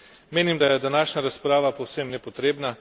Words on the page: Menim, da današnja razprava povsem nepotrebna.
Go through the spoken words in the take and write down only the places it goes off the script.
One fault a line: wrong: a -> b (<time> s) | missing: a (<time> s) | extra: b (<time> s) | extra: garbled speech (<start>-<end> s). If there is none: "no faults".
extra: je (0.6 s)